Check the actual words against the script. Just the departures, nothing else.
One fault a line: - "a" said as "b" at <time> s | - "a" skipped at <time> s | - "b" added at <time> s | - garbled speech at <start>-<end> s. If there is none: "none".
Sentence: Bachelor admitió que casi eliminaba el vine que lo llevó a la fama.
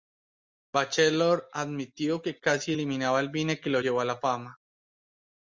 none